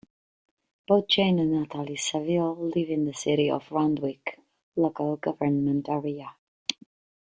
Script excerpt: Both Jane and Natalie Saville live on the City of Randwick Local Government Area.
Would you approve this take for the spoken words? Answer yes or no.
no